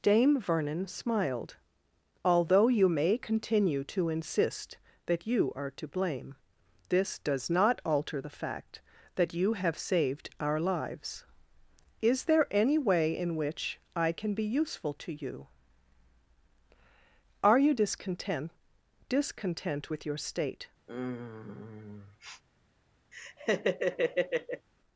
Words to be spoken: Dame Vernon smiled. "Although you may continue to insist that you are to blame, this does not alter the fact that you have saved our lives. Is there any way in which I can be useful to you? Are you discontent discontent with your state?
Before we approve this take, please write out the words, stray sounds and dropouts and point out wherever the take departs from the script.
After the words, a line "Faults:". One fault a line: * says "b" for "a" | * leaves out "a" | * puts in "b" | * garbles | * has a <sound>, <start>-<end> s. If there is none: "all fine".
Dame Vernon smiled. "Although you may continue to insist that you are to blame, this does not alter the fact that you have saved our lives. Is there any way in which I can be useful to you? Are you discontent discontent with your state?
Faults:
* has a sniff, 20.9-22.4 s
* has a laugh, 23.1-24.7 s